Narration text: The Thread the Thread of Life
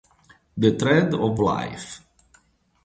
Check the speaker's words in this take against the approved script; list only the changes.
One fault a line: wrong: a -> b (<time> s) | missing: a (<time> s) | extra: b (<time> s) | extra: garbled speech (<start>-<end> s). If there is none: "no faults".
missing: the Thread (1.1 s)